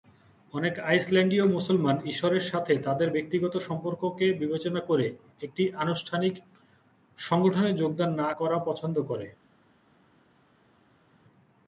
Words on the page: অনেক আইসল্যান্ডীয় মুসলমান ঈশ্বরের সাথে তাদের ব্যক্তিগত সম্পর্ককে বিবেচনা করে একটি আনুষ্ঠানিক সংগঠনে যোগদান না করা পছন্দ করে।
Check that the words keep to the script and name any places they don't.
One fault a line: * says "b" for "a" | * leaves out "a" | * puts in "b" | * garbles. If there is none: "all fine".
all fine